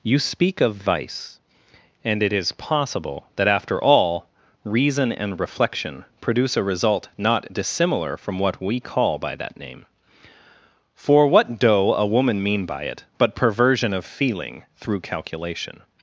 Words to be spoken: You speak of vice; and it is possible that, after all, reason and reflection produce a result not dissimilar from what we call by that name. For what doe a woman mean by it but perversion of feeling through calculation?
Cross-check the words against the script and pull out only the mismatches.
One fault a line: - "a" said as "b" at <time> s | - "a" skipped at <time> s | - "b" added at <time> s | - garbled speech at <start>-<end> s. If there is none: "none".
none